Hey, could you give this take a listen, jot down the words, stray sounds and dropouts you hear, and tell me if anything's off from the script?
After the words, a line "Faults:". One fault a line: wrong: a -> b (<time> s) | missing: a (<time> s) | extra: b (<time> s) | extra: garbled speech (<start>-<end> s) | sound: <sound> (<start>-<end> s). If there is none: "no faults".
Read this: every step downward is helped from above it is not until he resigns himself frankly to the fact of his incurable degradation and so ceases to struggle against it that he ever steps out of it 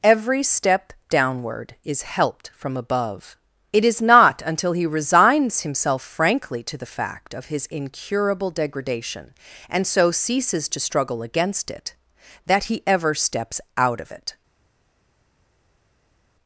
every step downward is helped from above it is not until he resigns himself frankly to the fact of his incurable degradation and so ceases to struggle against it that he ever steps out of it
Faults:
no faults